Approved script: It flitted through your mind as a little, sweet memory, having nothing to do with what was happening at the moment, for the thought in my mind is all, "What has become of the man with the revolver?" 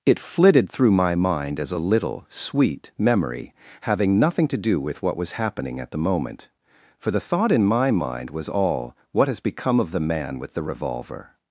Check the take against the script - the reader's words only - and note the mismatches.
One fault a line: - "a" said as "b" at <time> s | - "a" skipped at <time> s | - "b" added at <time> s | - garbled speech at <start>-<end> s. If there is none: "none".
- "your" said as "my" at 0.9 s
- "is" said as "was" at 8.3 s